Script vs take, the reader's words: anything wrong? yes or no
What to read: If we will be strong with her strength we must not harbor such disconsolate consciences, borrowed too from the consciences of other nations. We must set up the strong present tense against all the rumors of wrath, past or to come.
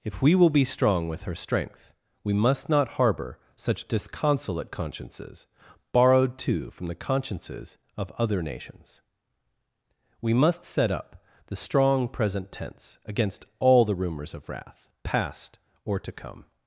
no